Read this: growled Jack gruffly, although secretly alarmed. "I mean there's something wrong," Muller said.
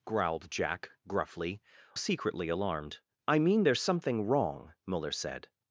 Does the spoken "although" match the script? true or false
false